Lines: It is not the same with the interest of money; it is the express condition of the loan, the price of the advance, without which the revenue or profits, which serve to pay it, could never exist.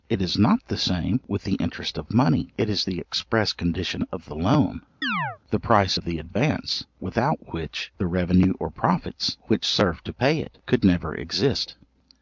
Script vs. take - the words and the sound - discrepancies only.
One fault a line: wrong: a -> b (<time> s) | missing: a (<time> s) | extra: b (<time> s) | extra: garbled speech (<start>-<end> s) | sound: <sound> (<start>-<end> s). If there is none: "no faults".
sound: chirp (5.0-5.4 s)